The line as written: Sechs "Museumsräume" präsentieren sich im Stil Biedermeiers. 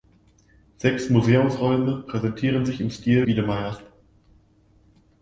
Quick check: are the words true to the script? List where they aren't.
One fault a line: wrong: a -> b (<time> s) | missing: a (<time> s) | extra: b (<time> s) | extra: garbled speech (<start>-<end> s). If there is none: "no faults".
no faults